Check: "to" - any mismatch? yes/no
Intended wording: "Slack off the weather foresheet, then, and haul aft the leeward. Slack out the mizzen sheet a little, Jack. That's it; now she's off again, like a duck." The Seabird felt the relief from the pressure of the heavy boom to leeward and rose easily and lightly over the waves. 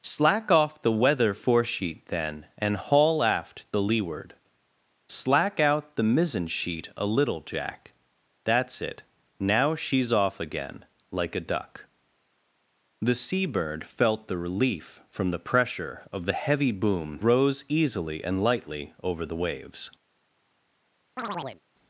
yes